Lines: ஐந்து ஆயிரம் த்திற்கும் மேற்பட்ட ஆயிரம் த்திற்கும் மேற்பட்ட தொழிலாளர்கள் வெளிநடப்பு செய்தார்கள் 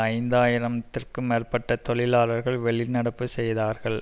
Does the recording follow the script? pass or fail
fail